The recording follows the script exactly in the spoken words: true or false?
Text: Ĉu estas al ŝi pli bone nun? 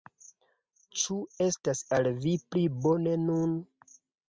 false